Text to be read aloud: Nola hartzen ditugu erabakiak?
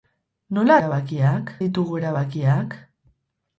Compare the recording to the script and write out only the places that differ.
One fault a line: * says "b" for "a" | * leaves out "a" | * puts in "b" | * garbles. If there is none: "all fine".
* says "erabakiak" for "hartzen"